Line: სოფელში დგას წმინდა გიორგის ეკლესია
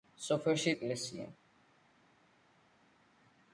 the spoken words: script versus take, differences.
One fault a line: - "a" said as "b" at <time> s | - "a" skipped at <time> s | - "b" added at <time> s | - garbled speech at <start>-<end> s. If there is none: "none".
- "დგას წმინდა გიორგის" skipped at 0.7 s